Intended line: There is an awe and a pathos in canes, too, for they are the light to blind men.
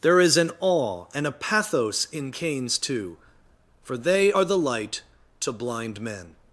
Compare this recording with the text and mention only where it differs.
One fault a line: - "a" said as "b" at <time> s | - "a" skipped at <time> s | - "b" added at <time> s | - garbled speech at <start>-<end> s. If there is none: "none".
none